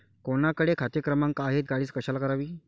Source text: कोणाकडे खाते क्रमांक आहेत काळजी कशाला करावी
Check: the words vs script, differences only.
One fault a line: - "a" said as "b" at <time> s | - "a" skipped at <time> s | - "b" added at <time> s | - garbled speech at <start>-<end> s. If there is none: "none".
none